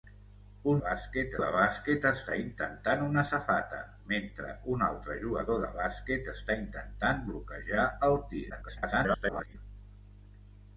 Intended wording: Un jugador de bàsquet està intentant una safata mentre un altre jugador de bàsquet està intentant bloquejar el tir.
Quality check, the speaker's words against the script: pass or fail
fail